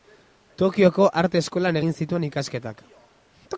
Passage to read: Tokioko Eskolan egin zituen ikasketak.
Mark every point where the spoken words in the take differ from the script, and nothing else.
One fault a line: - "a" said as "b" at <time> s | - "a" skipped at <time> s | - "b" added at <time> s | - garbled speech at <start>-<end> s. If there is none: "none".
- "Arte" added at 1.2 s